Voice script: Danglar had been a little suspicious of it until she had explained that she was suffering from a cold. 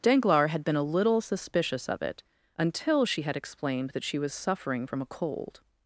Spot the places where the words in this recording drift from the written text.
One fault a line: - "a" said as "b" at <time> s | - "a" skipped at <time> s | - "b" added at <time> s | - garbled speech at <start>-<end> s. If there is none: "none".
none